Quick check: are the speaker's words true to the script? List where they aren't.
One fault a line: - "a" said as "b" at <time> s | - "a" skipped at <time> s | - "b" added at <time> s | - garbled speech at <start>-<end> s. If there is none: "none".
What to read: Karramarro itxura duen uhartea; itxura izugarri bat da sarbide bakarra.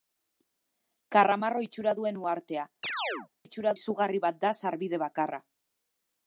none